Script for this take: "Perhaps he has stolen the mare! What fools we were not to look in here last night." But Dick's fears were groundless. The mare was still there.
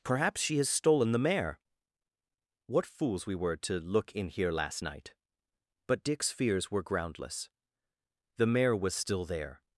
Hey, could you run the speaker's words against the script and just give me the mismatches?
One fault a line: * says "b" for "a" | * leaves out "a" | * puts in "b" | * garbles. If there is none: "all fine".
* says "she" for "he"
* leaves out "not"